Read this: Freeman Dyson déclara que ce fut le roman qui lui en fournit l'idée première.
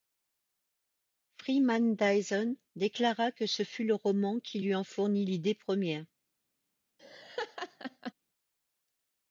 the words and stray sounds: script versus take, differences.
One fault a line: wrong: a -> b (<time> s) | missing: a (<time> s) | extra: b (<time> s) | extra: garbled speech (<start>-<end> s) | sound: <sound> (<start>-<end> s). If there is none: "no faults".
sound: laugh (7.0-8.1 s)